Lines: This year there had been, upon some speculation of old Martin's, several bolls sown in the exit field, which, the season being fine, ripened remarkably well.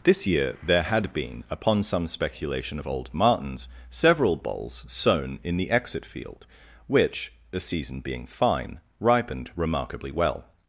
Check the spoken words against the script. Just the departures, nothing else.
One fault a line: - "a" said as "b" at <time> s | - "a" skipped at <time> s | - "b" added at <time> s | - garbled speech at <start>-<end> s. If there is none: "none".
none